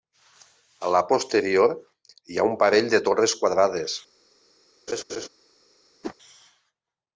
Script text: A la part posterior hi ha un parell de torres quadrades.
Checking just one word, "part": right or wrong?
wrong